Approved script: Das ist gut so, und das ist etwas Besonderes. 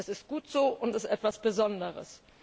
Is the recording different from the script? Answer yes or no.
yes